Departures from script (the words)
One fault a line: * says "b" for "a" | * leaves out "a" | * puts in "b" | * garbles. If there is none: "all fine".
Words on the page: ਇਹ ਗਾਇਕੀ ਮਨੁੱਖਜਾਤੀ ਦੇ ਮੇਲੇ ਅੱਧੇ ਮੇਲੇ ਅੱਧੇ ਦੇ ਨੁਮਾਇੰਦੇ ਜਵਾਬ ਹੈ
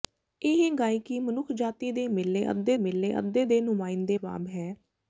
all fine